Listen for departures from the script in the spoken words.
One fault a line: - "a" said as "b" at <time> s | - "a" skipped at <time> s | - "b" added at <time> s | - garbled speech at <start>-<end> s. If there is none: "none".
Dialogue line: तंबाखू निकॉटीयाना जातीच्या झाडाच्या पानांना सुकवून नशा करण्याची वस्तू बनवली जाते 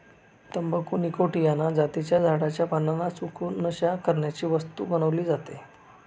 none